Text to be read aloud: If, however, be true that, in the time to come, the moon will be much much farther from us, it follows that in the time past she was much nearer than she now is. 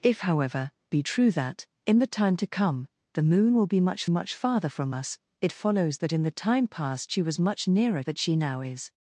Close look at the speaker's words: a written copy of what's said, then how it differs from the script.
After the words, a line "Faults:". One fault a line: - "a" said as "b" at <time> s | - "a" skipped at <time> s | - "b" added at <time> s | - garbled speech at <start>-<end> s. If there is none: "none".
If, however, be true that, in the time to come, the moon will be much much farther from us, it follows that in the time past she was much nearer than she now is.
Faults:
none